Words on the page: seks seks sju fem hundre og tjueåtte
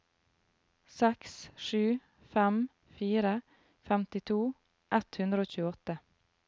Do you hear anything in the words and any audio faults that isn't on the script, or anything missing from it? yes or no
yes